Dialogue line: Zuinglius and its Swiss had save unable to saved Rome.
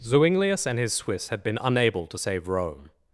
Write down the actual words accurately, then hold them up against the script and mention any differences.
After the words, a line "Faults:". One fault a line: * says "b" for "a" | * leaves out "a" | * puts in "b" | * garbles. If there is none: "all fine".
Zuinglius and his Swiss had been unable to save Rome.
Faults:
* says "his" for "its"
* says "been" for "save"
* says "save" for "saved"